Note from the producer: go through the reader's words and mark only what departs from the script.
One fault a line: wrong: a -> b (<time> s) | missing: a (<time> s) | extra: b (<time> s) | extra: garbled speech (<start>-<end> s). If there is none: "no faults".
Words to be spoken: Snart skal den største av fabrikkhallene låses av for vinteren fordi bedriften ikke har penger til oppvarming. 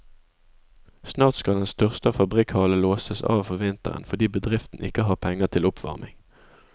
no faults